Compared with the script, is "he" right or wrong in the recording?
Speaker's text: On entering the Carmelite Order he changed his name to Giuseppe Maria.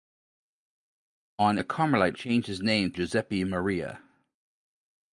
wrong